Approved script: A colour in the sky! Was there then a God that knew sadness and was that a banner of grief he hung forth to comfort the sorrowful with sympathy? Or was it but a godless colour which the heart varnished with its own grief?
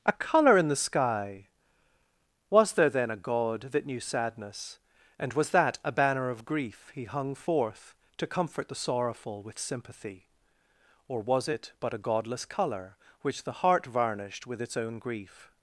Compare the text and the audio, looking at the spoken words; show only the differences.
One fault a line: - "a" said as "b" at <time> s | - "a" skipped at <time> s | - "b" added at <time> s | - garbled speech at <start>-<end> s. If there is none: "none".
none